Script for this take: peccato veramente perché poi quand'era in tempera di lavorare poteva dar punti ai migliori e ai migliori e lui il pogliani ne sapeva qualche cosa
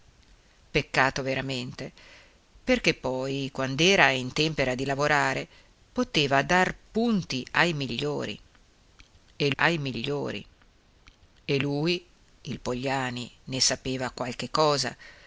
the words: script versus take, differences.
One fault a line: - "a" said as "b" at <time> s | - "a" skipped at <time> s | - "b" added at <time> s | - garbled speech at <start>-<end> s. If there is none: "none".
none